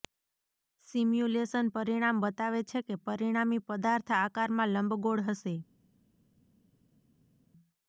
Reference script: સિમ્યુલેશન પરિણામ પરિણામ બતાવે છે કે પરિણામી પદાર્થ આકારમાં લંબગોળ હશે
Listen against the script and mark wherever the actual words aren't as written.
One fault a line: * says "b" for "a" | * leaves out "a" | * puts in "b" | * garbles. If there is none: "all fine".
* leaves out "પરિણામ"